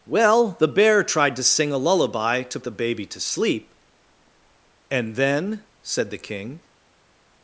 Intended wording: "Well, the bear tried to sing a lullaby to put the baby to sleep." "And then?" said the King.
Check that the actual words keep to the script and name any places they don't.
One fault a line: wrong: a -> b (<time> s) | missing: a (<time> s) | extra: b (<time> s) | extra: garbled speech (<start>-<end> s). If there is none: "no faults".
missing: put (2.6 s)